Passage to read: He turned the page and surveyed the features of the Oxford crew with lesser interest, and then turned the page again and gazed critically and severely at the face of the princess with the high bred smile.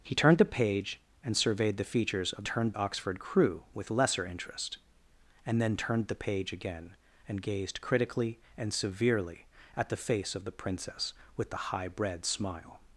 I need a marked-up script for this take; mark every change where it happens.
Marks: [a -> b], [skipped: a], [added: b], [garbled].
He turned the page and surveyed the features of [the -> turned] Oxford crew with lesser interest, and then turned the page again and gazed critically and severely at the face of the princess with the high bred smile.